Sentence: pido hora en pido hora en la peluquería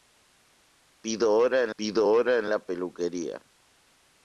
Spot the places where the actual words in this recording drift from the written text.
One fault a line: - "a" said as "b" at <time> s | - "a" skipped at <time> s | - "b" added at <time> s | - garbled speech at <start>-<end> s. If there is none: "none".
none